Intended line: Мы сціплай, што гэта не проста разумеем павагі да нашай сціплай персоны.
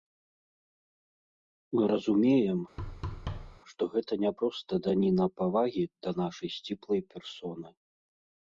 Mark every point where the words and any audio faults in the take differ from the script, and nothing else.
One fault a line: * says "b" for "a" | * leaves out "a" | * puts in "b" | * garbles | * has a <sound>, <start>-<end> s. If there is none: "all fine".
* says "разумеем" for "сціплай"
* has a thud, 2.8-3.6 s
* says "даніна" for "разумеем"